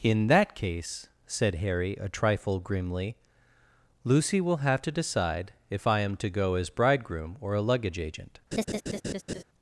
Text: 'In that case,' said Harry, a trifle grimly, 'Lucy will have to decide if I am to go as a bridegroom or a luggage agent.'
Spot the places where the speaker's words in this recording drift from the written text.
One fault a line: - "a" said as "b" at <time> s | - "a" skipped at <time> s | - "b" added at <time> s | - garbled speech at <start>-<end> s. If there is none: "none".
- "a" skipped at 6.7 s